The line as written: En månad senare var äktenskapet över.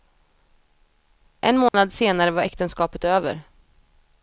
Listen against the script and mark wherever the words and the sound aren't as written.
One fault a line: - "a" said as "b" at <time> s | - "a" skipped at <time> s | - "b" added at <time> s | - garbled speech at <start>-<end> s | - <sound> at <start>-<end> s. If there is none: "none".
- dropout at 1.7-1.7 s